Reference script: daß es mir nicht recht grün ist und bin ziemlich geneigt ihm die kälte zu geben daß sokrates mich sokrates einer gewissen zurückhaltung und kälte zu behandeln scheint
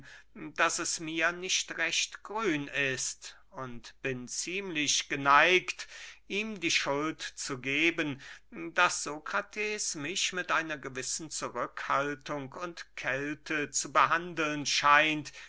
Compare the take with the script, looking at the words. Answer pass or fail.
fail